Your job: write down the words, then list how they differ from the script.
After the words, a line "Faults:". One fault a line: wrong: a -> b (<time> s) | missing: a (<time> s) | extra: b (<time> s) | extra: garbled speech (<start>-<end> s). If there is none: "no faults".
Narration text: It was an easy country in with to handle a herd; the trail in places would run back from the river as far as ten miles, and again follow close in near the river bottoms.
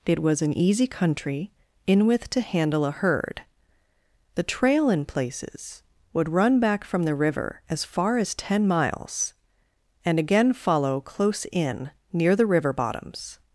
It was an easy country in with to handle a herd; the trail in places would run back from the river as far as ten miles, and again follow close in near the river bottoms.
Faults:
no faults